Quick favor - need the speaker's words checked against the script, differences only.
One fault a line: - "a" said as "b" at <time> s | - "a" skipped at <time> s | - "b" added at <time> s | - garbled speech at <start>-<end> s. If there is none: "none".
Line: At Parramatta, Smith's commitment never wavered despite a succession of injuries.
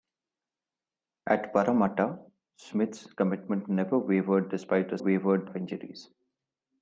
- "succession" said as "wavered" at 5.0 s